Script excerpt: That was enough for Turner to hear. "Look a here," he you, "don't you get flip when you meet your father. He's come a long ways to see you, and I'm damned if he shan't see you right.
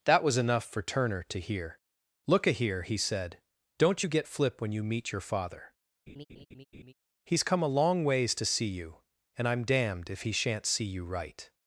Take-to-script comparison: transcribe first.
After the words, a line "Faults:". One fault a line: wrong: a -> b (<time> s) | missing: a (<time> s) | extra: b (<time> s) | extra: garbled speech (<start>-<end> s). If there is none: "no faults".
That was enough for Turner to hear. "Look a here," he said, "don't you get flip when you meet your father. He's come a long ways to see you, and I'm damned if he shan't see you right.
Faults:
wrong: you -> said (3.0 s)